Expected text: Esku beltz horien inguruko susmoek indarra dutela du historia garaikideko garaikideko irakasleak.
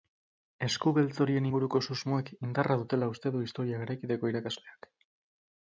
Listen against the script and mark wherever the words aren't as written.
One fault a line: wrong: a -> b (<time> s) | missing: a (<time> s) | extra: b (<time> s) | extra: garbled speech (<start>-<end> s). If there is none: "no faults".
extra: uste (3.1 s)
missing: garaikideko (4.3 s)